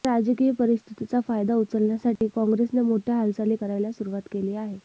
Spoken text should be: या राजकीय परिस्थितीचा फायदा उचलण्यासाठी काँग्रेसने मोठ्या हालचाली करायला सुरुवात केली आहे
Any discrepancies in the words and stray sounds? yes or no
yes